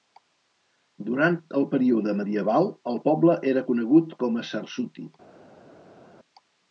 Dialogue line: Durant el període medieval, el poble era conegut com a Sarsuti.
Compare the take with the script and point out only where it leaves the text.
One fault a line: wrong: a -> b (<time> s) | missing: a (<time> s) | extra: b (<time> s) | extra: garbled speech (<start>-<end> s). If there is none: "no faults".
no faults